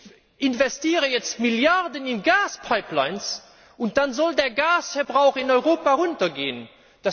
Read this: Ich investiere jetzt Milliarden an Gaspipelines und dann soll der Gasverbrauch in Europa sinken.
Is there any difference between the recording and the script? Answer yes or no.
yes